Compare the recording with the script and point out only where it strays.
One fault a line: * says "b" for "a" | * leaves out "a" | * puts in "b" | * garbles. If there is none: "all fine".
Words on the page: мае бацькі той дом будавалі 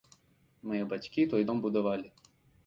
all fine